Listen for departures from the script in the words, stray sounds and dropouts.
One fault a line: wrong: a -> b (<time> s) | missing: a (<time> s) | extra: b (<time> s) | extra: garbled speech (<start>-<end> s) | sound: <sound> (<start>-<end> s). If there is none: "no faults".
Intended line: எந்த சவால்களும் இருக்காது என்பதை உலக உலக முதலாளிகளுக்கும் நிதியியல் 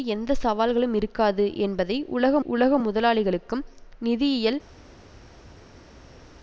no faults